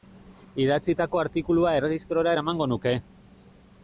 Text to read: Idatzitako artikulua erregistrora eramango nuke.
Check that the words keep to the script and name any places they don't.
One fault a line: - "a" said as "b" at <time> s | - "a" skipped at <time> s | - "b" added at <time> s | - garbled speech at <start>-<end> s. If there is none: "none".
none